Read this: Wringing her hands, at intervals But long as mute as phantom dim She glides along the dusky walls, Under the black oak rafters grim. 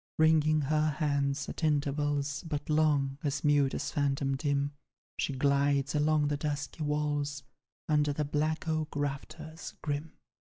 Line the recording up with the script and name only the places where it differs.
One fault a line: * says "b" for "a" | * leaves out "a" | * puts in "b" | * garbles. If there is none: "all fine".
all fine